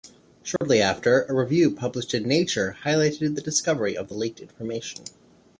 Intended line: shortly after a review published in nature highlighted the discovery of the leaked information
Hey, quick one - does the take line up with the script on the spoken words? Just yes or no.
yes